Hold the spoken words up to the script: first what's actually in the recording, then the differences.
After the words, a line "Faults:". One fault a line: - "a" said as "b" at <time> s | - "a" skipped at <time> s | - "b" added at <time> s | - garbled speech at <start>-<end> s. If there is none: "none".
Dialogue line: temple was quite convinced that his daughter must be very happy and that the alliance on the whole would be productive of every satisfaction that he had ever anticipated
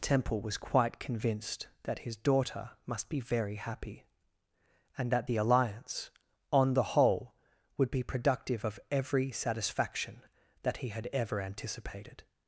temple was quite convinced that his daughter must be very happy and that the alliance on the whole would be productive of every satisfaction that he had ever anticipated
Faults:
none